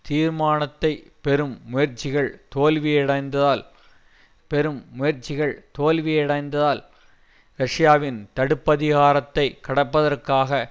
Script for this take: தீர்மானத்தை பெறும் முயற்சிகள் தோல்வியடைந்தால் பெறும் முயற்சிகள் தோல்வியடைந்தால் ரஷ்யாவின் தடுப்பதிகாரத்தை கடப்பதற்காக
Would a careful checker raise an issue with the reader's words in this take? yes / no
no